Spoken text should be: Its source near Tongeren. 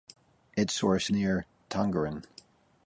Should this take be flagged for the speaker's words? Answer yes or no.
no